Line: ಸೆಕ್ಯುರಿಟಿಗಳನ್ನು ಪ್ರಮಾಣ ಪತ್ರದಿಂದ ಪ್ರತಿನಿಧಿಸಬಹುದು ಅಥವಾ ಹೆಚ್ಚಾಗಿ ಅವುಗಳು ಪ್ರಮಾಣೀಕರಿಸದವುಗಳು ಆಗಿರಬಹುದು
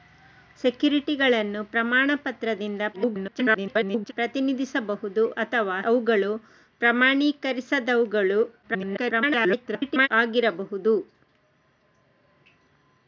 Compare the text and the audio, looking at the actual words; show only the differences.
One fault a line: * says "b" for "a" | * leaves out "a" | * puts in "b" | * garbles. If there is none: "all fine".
* garbles
* leaves out "ಹೆಚ್ಚಾಗಿ"
* garbles